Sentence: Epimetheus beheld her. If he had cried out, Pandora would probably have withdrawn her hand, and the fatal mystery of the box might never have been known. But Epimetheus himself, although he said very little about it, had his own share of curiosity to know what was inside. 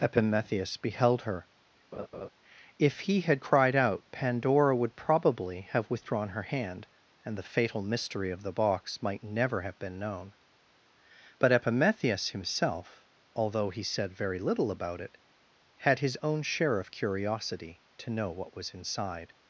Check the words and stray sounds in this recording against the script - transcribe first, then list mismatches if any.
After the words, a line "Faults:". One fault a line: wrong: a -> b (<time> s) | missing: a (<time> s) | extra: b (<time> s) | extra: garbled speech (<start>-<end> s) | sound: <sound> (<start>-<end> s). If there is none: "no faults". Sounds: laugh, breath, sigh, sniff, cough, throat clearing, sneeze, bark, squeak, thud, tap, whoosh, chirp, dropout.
Epimetheus beheld her. If he had cried out, Pandora would probably have withdrawn her hand, and the fatal mystery of the box might never have been known. But Epimetheus himself, although he said very little about it, had his own share of curiosity to know what was inside.
Faults:
sound: laugh (1.9-2.3 s)